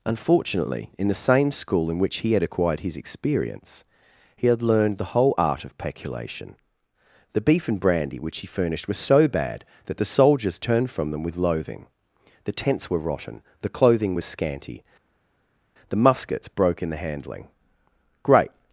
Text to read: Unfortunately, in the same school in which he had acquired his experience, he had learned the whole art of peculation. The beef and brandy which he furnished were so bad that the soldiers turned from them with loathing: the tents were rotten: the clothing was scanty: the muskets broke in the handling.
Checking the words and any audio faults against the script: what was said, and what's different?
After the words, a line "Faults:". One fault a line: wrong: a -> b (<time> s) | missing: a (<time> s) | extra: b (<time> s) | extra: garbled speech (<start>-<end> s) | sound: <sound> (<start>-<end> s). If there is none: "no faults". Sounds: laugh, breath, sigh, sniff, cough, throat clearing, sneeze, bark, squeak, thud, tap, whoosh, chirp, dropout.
Unfortunately, in the same school in which he had acquired his experience, he had learned the whole art of peculation. The beef and brandy which he furnished were so bad that the soldiers turned from them with loathing: the tents were rotten: the clothing was scanty: the muskets broke in the handling. Great
Faults:
extra: Great (18.2 s)